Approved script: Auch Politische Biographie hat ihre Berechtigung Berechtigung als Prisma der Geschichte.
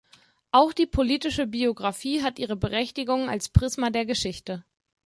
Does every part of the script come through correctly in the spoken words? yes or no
no